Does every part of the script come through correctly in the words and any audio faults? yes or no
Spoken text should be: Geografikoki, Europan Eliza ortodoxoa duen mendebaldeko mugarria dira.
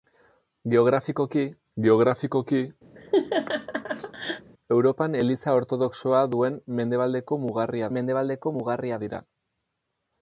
no